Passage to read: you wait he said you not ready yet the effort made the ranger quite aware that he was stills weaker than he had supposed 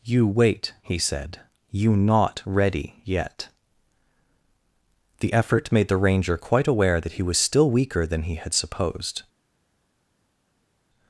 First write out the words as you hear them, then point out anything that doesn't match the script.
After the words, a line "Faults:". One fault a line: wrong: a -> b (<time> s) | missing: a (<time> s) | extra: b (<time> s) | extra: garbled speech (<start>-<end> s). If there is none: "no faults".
you wait he said you not ready yet the effort made the ranger quite aware that he was still weaker than he had supposed
Faults:
wrong: stills -> still (7.4 s)